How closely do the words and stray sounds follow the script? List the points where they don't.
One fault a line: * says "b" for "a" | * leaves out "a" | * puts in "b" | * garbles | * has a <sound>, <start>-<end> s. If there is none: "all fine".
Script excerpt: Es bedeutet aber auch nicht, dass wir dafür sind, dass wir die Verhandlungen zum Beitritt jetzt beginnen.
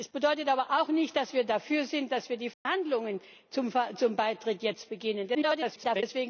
* has a dropout, 2.5-2.7 s
* garbles